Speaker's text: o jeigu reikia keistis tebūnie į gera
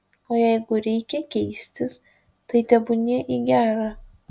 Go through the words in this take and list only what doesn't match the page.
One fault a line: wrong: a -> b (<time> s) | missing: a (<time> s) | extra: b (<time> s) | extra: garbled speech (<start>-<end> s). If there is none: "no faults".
extra: tai (2.5 s)